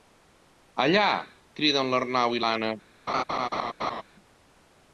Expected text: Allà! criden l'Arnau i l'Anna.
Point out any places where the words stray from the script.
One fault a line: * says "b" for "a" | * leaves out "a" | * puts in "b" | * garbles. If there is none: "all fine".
all fine